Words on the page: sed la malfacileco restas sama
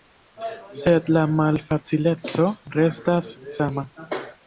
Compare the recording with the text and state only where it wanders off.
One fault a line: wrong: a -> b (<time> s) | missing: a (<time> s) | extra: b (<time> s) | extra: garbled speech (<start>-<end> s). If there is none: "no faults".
no faults